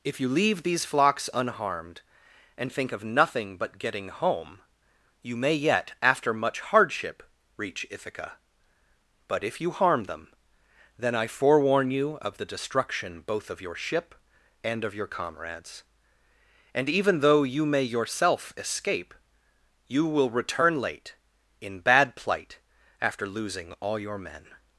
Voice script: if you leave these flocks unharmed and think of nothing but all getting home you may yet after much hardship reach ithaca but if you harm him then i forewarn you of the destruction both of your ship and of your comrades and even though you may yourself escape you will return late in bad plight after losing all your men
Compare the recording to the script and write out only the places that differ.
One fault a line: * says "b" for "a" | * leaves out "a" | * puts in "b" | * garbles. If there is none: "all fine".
* leaves out "all"
* says "them" for "him"